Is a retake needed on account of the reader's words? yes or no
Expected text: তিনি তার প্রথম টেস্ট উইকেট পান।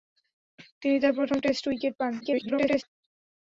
yes